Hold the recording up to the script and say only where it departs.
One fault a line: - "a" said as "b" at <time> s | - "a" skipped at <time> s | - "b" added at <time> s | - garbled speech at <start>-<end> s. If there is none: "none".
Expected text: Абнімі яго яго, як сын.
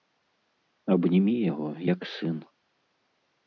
- "яго" skipped at 1.7 s